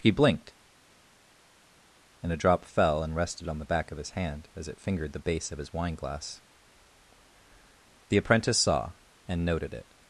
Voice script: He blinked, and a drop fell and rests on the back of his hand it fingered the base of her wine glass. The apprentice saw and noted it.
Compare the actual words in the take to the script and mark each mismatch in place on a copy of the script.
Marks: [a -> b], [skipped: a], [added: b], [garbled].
He blinked, and a drop fell and [rests -> rested] on the back of his hand [added: as] it fingered the base of [her -> his] wine glass. The apprentice saw and noted it.